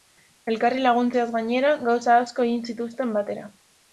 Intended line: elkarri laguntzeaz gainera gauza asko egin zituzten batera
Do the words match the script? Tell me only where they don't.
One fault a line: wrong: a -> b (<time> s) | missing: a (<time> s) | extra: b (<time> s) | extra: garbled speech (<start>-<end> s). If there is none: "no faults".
no faults